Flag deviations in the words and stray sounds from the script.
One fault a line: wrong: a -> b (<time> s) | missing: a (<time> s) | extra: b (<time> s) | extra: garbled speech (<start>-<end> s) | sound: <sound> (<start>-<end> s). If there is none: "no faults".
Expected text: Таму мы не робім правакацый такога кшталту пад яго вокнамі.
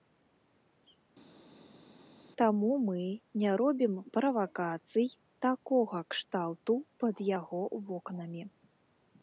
no faults